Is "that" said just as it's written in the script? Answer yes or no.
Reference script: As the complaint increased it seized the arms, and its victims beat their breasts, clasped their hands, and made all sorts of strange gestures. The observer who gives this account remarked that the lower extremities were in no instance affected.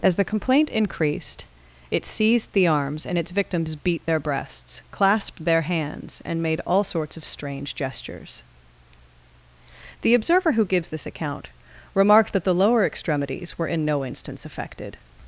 yes